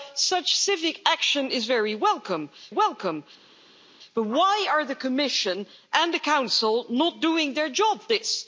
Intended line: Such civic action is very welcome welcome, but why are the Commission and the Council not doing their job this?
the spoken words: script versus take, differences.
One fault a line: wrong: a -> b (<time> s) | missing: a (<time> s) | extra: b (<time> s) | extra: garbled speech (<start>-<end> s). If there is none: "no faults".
no faults